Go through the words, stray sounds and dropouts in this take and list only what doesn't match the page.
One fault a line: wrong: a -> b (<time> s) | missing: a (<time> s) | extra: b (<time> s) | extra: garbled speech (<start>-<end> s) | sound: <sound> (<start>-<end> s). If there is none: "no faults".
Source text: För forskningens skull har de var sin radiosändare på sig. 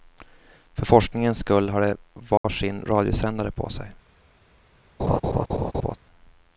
sound: dropout (2.4-2.4 s)
sound: laugh (5.0-6.0 s)